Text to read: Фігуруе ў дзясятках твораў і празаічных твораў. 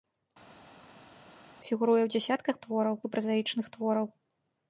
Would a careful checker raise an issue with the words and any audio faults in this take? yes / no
no